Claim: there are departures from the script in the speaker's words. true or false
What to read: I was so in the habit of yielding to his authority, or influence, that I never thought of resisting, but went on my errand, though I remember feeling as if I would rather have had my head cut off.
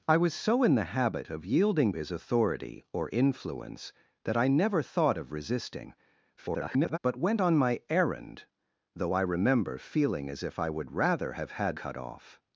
true